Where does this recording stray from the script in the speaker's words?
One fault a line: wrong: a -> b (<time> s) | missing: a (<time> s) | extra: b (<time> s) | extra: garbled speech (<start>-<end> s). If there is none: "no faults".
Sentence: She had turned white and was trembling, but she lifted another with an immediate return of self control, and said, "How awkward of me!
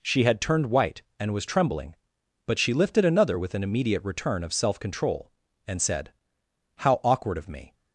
no faults